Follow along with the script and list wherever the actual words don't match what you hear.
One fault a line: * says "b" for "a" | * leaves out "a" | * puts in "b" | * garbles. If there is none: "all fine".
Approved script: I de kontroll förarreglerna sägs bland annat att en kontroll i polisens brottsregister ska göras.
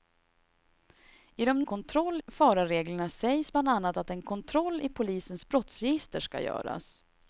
all fine